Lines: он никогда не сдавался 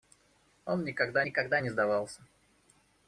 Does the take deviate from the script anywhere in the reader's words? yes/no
yes